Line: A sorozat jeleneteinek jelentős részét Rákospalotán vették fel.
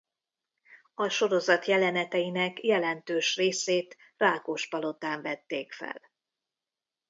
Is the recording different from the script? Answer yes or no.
no